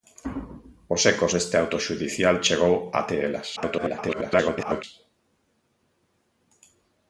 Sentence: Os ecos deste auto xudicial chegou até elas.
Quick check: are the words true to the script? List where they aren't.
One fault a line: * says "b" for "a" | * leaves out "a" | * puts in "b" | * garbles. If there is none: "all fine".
* garbles